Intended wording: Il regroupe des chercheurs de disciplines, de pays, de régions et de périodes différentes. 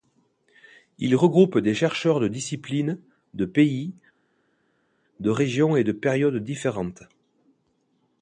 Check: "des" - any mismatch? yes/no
no